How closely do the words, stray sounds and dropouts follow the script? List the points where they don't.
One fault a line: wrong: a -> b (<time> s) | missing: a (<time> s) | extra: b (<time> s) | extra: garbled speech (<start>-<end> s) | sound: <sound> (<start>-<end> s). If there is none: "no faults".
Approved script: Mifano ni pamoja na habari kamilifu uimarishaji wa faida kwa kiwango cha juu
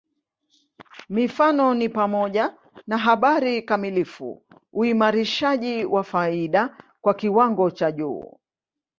no faults